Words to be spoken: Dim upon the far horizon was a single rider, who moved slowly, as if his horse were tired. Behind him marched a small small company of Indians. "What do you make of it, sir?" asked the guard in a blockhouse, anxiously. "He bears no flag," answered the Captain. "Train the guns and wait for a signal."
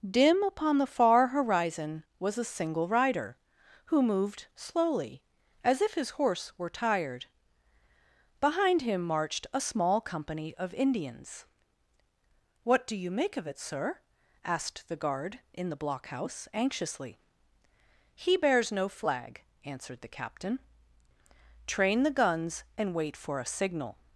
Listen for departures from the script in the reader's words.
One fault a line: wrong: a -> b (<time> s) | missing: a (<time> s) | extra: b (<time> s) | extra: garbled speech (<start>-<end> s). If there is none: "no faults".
missing: small (10.0 s)
wrong: a -> the (15.7 s)